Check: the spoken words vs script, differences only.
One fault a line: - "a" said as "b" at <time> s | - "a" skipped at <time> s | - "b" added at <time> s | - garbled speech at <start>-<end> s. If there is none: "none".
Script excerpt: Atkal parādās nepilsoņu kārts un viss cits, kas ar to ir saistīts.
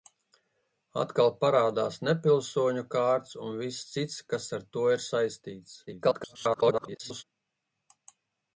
- garbled speech at 5.9-7.2 s